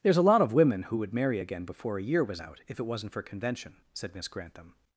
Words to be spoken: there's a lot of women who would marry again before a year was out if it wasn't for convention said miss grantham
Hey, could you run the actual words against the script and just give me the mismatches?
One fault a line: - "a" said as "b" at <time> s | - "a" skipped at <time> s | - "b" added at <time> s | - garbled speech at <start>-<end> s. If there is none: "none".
none